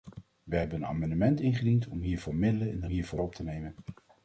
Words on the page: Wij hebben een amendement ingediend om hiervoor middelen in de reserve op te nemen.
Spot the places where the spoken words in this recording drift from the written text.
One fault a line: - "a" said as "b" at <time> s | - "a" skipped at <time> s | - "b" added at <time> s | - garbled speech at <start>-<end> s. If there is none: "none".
- "reserve" said as "hiervoor" at 2.9 s